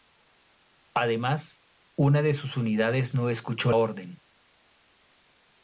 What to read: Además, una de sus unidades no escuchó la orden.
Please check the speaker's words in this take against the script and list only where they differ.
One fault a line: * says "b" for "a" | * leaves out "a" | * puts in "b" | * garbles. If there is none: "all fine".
* leaves out "la"